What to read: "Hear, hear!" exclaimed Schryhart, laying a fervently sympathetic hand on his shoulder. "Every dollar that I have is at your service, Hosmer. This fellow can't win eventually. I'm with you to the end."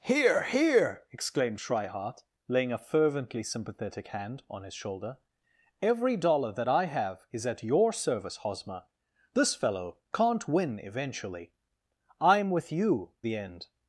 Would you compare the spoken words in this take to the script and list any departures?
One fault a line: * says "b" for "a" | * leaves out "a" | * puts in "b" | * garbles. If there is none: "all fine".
* leaves out "to"